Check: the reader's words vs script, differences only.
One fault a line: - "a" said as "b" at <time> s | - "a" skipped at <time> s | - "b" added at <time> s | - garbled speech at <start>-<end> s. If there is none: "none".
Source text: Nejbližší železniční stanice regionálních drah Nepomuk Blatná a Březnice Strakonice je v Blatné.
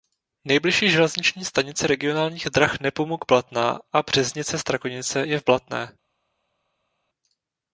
none